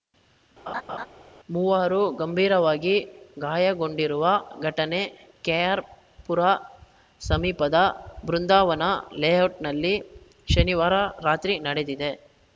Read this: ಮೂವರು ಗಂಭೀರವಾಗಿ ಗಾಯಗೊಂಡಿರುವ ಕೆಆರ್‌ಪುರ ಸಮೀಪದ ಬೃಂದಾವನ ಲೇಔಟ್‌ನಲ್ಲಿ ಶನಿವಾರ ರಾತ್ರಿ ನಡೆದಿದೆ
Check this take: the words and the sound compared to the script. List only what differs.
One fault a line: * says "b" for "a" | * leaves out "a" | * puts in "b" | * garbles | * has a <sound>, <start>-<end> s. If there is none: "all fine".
* has a laugh, 0.7-1.1 s
* puts in "ಘಟನೆ"